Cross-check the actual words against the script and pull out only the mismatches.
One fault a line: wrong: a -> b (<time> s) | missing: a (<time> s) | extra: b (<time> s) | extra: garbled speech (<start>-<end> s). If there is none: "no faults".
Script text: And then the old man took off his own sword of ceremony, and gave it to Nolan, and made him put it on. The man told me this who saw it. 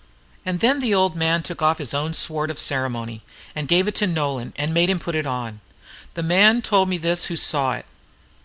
no faults